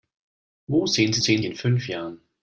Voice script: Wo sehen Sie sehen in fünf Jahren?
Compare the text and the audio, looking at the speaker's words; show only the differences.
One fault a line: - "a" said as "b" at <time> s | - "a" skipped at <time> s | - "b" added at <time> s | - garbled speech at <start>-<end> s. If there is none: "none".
none